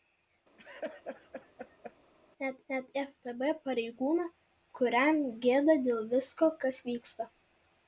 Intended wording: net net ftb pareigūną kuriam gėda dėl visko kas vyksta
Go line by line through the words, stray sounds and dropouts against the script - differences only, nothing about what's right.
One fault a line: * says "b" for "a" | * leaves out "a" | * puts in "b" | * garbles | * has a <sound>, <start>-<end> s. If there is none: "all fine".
* has a laugh, 0.6-1.9 s